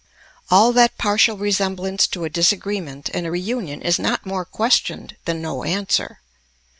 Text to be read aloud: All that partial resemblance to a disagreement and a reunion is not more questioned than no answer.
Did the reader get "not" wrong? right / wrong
right